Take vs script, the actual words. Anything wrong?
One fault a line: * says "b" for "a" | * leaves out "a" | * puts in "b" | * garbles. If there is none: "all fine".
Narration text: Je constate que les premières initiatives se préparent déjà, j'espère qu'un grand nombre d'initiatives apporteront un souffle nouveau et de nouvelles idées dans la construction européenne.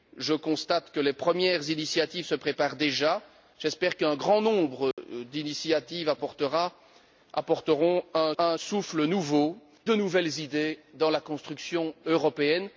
* puts in "un"
* leaves out "et"